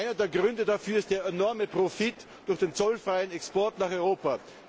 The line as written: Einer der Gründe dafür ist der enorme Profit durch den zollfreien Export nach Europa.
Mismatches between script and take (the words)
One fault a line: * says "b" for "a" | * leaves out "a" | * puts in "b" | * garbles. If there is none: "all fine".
all fine